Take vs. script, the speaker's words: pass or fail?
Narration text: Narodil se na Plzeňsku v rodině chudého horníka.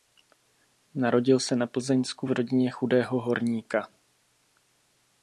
pass